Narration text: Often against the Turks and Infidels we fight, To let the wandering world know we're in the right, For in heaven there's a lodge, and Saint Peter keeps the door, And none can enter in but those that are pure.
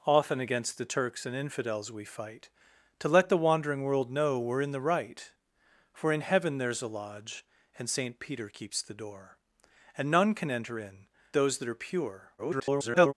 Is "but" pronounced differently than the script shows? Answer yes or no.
yes